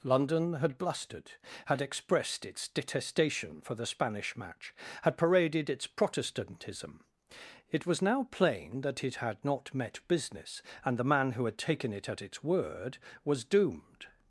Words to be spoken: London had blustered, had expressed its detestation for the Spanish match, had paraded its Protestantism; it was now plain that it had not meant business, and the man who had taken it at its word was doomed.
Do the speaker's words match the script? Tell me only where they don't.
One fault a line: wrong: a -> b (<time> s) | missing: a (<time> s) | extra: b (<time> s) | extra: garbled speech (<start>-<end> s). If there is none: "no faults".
wrong: meant -> met (9.7 s)